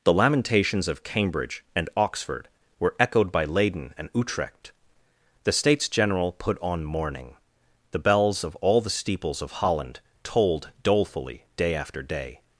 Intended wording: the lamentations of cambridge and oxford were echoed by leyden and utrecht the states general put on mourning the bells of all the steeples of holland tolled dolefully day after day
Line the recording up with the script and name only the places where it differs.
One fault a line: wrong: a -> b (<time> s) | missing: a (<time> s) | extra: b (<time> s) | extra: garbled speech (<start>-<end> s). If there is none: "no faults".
no faults